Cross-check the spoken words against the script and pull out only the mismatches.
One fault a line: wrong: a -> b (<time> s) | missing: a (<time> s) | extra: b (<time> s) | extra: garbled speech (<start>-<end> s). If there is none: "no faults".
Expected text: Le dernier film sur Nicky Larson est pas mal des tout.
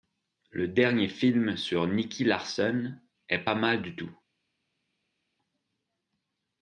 wrong: des -> du (3.8 s)